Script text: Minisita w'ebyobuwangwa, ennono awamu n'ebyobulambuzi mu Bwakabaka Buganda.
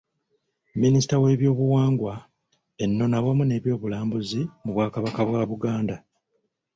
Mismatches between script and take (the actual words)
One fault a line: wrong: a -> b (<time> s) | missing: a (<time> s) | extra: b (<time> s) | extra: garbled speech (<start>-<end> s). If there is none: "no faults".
extra: bwa (5.3 s)